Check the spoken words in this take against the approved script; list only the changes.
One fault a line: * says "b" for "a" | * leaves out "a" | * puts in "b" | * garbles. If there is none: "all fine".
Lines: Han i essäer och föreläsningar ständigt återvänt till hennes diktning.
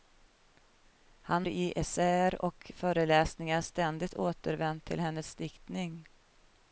all fine